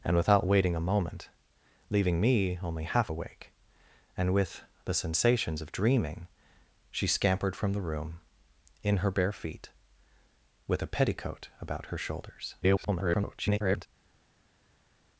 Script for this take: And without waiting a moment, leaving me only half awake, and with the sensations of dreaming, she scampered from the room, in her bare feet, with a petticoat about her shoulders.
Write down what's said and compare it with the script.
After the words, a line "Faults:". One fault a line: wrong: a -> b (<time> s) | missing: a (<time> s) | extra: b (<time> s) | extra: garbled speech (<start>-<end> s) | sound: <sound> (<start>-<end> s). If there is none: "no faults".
And without waiting a moment, leaving me only half awake, and with the sensations of dreaming, she scampered from the room, in her bare feet, with a petticoat about her shoulders. [garbled]
Faults:
extra: garbled speech (12.6-13.9 s)